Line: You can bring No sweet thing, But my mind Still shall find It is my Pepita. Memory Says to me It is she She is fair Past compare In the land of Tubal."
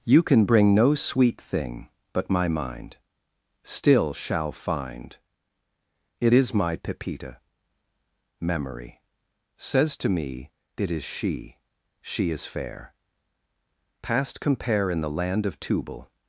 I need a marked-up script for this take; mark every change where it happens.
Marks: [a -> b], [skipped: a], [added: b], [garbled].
You can bring No sweet thing, But my mind Still shall find It is my Pepita. Memory Says to me It is she She is fair Past compare In the land of Tubal."